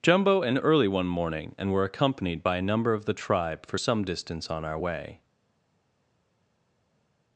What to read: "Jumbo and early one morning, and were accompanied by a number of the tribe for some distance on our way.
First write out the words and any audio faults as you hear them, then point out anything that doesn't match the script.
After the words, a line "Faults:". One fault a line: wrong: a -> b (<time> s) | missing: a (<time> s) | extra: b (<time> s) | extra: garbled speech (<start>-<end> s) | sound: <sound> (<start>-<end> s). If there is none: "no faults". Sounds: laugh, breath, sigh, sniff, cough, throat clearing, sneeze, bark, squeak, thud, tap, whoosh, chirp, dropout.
"Jumbo and early one morning, and were accompanied by a number of the tribe for some distance on our way.
Faults:
no faults